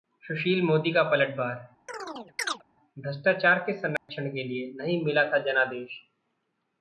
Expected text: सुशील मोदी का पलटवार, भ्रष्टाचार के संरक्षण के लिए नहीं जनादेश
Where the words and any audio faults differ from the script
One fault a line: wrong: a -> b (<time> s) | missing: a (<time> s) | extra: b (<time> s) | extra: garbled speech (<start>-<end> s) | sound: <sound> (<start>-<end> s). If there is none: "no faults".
sound: chirp (1.9-2.6 s)
sound: dropout (4.0-4.1 s)
extra: मिला था (5.1 s)